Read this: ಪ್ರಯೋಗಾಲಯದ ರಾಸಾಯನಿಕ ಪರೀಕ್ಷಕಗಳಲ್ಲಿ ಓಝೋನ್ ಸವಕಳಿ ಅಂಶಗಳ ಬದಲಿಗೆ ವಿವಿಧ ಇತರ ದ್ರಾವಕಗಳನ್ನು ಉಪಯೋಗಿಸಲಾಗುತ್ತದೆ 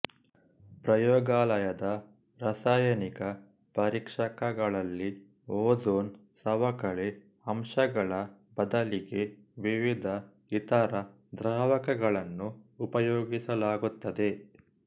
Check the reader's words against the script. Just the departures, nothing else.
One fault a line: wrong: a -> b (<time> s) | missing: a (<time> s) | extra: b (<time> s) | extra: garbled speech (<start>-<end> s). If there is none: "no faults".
no faults